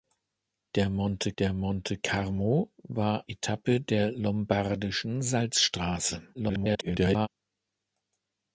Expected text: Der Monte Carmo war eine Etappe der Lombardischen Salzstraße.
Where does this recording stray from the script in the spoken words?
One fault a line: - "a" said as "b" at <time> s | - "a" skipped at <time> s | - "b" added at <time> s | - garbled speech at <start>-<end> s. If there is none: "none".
- "der Monte" added at 1.4 s
- "eine" skipped at 3.3 s
- garbled speech at 6.3-7.3 s